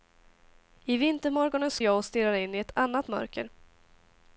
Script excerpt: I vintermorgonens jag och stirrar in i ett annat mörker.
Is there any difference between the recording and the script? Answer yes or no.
no